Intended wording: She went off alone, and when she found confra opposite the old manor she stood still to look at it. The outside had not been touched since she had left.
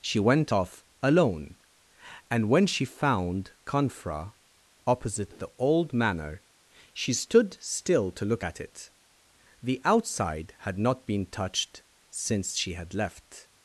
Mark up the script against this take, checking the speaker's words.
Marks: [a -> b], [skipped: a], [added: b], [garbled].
She went off alone, and when she found confra opposite the old manor she stood still to look at it. The outside had not been touched since she had left.